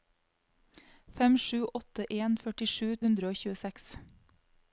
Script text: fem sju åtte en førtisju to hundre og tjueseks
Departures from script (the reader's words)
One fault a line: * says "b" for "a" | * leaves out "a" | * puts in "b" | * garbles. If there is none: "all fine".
* leaves out "to"